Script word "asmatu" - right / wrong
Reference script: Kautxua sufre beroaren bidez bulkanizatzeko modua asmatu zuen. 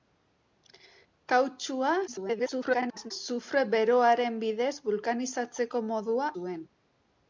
wrong